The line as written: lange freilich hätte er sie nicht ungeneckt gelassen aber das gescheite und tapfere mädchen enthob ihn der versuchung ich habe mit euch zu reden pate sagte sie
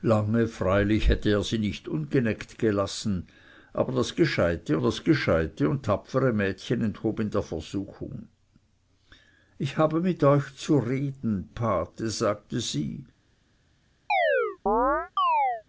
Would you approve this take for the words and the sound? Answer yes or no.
no